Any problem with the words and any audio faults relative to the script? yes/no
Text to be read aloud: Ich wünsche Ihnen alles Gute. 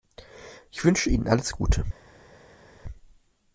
no